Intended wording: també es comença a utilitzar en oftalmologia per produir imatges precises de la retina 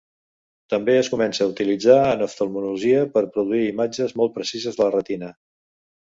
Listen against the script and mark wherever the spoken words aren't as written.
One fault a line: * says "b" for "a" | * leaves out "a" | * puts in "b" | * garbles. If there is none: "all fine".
* puts in "molt"